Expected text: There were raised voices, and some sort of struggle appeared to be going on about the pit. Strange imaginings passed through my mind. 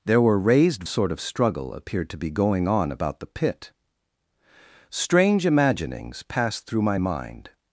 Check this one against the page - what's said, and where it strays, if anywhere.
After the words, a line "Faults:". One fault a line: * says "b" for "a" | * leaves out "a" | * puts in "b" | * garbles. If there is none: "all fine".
There were raised sort of struggle appeared to be going on about the pit. Strange imaginings passed through my mind.
Faults:
* leaves out "voices and some"